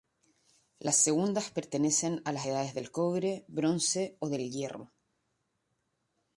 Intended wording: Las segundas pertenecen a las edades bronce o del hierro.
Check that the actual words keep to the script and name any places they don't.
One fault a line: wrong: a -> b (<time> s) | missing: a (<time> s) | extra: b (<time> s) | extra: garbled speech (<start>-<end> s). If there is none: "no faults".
extra: del cobre (2.7 s)